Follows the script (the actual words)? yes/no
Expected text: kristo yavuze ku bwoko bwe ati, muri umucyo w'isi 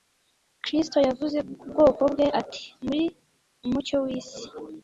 yes